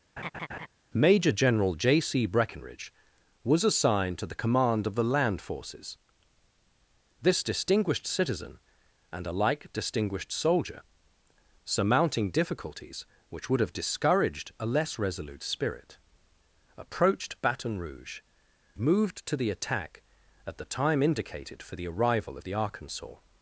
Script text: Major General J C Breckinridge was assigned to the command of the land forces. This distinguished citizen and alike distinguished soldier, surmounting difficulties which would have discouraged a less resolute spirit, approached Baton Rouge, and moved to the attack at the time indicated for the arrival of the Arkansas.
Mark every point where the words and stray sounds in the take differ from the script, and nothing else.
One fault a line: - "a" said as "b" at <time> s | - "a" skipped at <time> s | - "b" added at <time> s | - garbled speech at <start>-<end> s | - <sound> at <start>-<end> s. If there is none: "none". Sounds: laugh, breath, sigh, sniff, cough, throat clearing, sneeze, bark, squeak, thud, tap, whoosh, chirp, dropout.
- laugh at 0.2-0.7 s
- "and" skipped at 18.2 s